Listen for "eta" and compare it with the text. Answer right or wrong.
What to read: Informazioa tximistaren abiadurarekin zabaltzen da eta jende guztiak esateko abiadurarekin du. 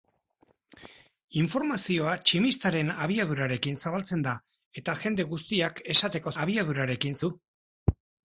right